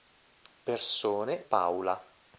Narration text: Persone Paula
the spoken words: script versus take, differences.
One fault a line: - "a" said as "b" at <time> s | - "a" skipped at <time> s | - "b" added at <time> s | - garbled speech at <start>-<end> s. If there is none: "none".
none